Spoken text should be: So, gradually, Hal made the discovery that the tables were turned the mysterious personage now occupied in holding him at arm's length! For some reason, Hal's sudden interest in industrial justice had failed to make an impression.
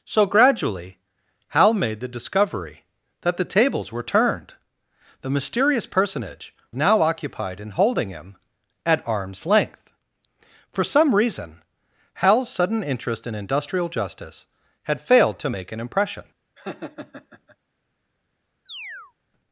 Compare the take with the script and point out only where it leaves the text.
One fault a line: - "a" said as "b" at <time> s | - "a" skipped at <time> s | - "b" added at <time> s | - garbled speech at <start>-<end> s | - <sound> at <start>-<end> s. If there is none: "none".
- laugh at 16.6-17.6 s
- chirp at 18.7-19.1 s